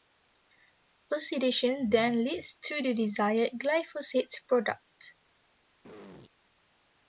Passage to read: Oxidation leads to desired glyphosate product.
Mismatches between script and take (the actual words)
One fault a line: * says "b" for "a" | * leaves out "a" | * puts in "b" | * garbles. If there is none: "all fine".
* puts in "then"
* puts in "the"